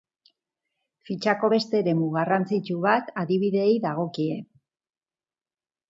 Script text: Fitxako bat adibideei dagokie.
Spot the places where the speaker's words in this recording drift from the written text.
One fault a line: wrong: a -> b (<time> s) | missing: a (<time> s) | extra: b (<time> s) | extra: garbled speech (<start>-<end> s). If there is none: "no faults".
extra: beste eremu garrantzitsu (1.5 s)